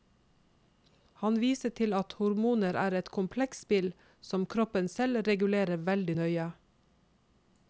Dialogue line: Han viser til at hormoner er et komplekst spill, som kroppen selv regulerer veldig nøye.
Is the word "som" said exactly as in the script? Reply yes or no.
yes